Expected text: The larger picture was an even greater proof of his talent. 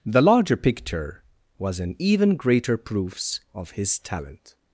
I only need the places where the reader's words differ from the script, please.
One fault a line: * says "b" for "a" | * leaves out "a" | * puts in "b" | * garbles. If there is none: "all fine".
* says "proofs" for "proof"